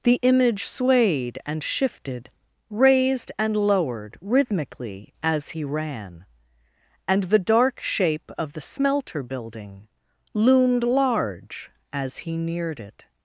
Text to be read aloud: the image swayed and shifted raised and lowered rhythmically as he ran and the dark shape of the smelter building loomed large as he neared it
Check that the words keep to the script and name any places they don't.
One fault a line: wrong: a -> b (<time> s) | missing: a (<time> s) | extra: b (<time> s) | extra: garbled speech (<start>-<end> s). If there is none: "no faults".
no faults